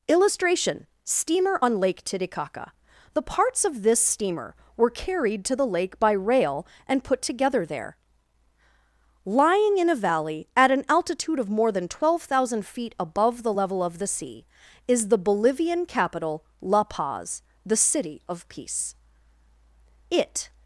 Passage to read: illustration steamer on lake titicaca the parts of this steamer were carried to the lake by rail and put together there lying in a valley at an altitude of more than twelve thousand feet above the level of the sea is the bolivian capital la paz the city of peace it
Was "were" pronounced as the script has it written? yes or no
yes